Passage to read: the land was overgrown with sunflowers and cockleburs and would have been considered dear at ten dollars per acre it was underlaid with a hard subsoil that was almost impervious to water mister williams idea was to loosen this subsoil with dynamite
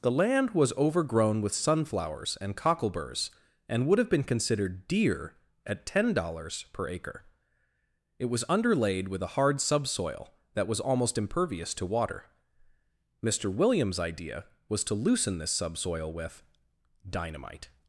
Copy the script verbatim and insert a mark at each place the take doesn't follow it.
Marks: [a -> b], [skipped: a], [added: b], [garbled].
the land was overgrown with sunflowers and cockleburs and would have been considered dear at ten dollars per acre it was underlaid with a hard subsoil that was almost impervious to water mister williams idea was to loosen this subsoil with dynamite